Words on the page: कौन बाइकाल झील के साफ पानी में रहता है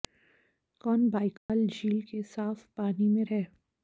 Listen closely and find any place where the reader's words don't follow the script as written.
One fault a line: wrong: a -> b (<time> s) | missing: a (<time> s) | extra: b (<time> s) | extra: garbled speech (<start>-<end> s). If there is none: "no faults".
missing: रहता (3.2 s)